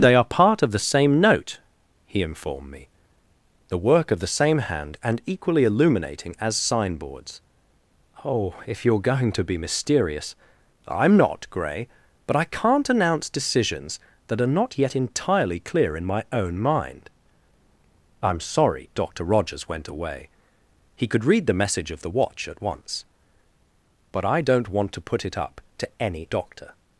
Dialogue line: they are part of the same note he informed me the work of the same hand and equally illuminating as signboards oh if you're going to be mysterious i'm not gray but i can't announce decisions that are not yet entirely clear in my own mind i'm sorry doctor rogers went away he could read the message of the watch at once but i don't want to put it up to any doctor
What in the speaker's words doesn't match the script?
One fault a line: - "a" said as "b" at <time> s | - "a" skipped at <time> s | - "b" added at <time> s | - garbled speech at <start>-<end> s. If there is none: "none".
none